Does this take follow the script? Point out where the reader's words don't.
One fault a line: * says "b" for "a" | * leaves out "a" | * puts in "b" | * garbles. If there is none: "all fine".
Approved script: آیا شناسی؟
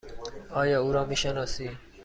* puts in "او را می"